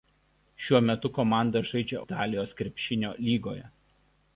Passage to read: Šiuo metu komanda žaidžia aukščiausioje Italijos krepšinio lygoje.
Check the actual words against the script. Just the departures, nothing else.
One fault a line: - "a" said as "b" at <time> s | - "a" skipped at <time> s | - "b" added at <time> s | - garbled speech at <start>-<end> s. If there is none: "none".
- "aukščiausioje" skipped at 2.0 s